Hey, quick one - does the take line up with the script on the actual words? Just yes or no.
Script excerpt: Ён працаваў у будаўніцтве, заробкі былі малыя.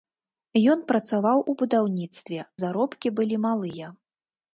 yes